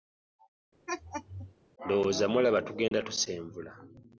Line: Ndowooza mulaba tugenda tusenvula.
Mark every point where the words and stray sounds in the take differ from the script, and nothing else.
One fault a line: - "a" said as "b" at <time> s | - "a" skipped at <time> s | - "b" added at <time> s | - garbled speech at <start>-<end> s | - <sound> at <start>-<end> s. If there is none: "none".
- laugh at 0.9-1.5 s
- dropout at 2.9-2.9 s